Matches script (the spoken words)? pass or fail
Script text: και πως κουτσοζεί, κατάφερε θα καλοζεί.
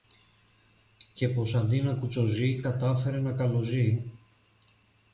fail